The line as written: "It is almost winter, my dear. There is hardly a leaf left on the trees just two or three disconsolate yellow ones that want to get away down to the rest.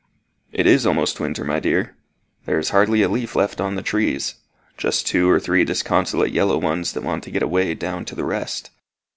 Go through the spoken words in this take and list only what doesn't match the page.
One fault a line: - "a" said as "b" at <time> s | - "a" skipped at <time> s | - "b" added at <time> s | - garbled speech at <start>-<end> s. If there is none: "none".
none